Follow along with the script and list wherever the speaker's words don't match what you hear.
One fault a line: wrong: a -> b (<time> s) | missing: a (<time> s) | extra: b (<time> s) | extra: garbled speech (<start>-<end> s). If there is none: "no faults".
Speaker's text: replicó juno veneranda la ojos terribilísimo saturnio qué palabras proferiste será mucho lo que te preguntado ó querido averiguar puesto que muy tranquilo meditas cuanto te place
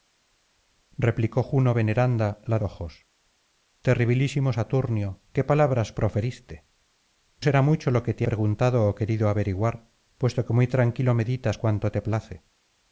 no faults